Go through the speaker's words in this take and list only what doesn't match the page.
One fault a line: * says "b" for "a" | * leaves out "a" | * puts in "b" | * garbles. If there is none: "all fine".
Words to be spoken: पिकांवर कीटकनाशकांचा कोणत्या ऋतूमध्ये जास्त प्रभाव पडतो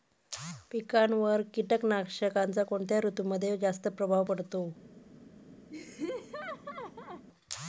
all fine